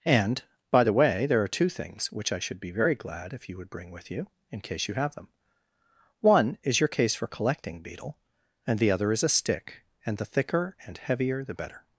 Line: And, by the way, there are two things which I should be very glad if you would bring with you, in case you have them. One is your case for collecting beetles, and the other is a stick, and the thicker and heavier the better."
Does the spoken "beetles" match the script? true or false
false